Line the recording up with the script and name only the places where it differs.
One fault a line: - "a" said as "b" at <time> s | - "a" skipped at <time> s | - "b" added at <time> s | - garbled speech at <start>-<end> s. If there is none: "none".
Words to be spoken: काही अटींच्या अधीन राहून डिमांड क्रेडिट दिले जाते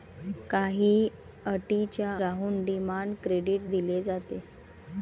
- "अधीन" skipped at 2.1 s